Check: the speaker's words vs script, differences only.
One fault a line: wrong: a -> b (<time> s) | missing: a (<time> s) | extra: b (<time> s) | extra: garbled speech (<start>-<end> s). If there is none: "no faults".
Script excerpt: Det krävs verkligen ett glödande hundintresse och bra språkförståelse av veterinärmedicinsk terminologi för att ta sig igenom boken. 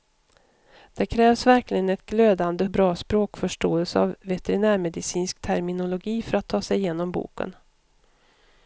missing: hundintresse (2.6 s)